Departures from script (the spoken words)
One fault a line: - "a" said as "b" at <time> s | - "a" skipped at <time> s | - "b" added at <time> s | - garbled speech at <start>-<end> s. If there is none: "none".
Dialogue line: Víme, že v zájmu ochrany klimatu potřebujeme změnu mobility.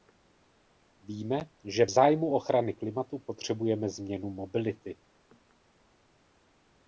none